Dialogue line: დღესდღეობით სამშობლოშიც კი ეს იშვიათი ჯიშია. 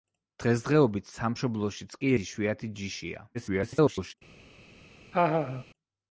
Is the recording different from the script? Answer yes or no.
yes